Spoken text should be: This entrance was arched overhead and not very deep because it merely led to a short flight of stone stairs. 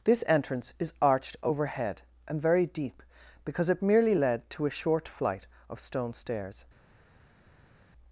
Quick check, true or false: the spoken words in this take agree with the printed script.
false